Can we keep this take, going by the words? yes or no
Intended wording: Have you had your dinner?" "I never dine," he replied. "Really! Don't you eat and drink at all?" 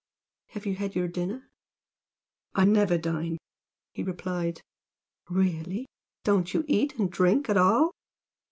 yes